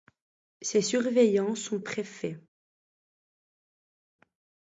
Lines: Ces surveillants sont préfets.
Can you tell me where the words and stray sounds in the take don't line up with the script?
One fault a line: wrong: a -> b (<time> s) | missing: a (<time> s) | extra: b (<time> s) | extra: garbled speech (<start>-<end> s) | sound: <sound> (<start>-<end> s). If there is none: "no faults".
no faults